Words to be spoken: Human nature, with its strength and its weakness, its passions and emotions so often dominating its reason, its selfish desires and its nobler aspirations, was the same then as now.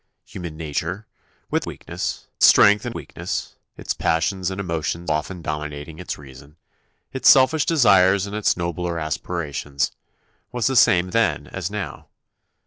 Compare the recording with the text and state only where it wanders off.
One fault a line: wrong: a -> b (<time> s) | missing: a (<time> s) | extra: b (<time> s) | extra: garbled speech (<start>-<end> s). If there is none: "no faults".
wrong: its -> weakness (1.7 s)
missing: its (3.0 s)
missing: so (5.1 s)